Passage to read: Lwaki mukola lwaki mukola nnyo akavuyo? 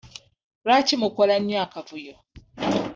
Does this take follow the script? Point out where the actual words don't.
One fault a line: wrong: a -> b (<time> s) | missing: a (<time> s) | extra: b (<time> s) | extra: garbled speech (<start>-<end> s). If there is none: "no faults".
missing: lwaki mukola (1.4 s)